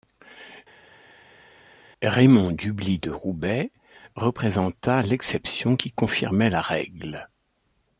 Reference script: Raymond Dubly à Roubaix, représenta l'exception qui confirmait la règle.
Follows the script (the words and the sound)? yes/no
no